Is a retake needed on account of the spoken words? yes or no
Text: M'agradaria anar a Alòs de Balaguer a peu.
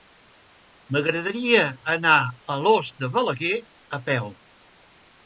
no